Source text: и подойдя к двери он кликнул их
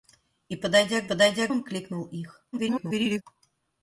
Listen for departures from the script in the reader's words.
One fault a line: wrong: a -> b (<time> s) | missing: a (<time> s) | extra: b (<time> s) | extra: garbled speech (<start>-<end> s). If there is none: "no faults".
wrong: двери -> подойдя (1.0 s)
extra: garbled speech (2.5-3.2 s)